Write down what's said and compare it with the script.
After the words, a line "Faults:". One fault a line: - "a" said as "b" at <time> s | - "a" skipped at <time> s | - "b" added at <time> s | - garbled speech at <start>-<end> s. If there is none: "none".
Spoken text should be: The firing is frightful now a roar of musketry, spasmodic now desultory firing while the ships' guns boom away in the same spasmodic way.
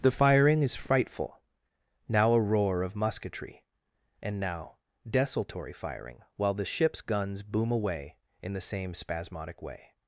The firing is frightful now a roar of musketry, and now desultory firing while the ships' guns boom away in the same spasmodic way.
Faults:
- "spasmodic" said as "and" at 4.2 s